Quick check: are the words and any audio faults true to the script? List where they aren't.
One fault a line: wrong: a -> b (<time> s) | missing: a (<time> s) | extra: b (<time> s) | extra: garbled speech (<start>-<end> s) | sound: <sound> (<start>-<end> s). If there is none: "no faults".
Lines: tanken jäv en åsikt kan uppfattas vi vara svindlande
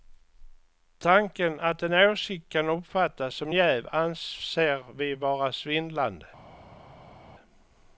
wrong: jäv -> att (1.6 s)
extra: som jäv anser (3.3 s)